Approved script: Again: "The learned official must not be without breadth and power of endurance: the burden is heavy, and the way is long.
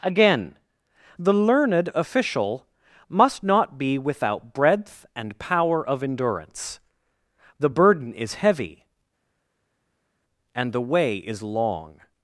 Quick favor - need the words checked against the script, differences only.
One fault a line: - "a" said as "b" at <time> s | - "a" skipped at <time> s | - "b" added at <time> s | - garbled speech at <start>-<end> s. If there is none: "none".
none